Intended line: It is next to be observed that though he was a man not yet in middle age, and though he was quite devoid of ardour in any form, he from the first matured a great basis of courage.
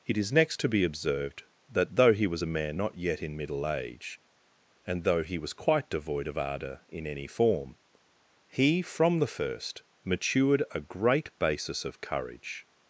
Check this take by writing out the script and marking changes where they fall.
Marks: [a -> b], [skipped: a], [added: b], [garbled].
It is next to be observed that though he was a man not yet in middle age, and though he was quite devoid of ardour in any form, he from the first matured a great basis of courage.